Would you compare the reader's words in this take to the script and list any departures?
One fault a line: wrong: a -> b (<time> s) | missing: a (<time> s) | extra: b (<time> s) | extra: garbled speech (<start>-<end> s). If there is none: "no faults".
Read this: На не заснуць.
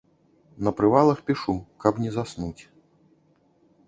extra: прывалах пішу каб (0.8 s)